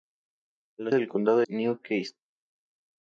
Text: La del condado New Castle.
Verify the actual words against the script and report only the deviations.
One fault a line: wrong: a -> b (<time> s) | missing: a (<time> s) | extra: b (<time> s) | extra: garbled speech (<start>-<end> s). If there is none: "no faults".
no faults